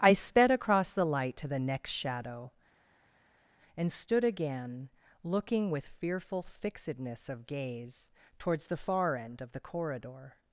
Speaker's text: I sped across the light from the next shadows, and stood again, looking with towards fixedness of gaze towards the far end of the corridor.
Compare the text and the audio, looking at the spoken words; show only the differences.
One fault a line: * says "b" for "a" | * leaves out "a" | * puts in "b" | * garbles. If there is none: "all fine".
* says "to" for "from"
* says "shadow" for "shadows"
* says "fearful" for "towards"